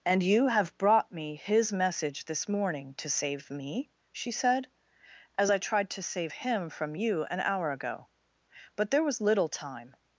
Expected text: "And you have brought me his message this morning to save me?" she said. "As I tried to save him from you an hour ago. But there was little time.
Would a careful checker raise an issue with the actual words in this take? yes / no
no